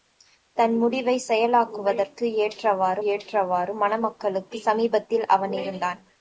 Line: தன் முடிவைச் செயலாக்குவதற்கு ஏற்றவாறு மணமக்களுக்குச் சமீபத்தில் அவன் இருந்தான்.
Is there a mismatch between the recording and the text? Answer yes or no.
yes